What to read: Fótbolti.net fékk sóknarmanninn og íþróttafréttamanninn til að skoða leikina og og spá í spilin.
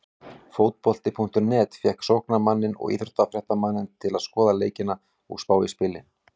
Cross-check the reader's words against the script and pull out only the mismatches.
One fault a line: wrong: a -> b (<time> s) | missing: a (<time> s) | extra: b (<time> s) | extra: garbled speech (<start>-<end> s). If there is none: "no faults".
missing: og (5.5 s)